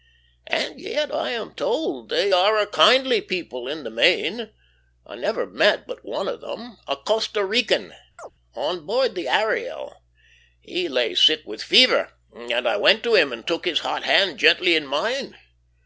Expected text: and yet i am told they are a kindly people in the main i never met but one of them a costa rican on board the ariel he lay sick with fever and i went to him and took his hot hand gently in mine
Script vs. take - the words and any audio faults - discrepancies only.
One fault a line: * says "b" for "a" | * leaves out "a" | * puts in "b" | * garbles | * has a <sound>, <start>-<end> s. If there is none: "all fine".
* has a chirp, 8.2-8.3 s